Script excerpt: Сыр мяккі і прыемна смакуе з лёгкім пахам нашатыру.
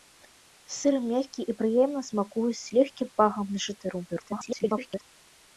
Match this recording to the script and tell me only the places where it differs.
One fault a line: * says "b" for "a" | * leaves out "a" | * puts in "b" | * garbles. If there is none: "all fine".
* garbles